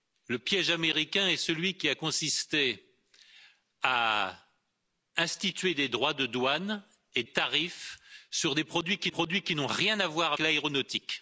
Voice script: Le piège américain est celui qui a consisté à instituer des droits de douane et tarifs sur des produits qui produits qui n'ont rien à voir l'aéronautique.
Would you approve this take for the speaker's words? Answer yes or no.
yes